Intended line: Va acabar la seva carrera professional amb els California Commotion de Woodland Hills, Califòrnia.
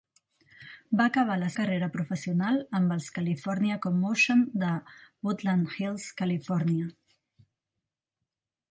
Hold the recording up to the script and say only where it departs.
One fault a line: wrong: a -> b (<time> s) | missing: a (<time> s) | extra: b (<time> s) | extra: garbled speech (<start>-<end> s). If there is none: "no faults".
missing: seva (1.5 s)